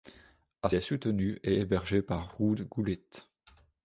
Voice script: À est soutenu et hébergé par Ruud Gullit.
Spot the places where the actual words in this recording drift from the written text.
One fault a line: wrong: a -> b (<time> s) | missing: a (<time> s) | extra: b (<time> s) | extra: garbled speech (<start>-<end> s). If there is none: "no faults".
no faults